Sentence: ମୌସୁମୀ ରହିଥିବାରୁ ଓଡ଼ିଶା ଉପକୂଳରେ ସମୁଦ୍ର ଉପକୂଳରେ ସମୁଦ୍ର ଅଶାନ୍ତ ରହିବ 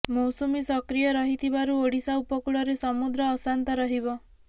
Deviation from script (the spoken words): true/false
true